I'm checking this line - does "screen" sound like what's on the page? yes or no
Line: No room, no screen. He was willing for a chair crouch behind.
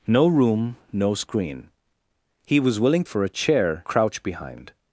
yes